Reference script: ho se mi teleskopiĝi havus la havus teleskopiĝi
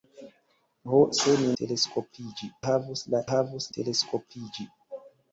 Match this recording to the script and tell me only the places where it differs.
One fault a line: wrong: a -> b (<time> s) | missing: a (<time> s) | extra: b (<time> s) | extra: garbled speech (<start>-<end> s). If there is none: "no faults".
no faults